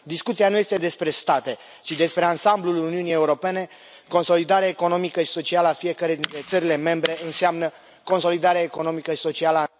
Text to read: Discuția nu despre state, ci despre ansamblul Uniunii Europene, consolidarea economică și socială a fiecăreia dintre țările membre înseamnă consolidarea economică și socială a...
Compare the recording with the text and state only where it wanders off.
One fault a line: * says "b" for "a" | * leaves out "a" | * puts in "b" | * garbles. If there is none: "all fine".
* puts in "este"